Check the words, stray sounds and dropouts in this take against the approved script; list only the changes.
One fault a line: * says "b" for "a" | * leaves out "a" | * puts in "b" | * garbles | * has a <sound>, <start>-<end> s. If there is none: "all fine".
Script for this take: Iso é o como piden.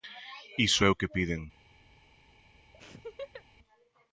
* says "que" for "como"
* has a laugh, 2.7-3.4 s